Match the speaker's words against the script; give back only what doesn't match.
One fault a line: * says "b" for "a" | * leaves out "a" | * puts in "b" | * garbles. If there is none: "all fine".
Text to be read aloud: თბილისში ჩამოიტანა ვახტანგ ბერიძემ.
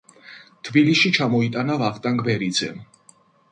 all fine